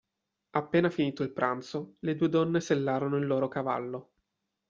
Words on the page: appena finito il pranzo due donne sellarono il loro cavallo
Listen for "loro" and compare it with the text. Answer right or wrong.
right